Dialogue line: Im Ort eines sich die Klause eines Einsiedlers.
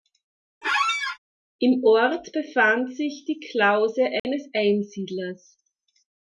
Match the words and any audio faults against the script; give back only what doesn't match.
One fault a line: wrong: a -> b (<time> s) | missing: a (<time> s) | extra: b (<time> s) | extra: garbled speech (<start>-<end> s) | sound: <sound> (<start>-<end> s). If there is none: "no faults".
sound: squeak (0.6-1.2 s)
wrong: eines -> befand (2.3 s)
sound: dropout (4.2-4.2 s)